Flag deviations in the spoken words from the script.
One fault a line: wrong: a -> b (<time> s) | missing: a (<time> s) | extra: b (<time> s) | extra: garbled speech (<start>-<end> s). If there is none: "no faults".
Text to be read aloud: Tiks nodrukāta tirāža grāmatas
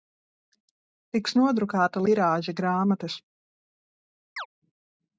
no faults